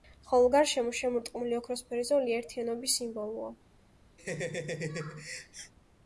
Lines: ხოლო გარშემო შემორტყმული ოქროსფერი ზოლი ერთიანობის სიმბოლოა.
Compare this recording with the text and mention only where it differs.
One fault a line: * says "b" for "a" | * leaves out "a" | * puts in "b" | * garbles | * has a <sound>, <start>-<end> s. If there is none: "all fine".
* has a laugh, 4.2-5.7 s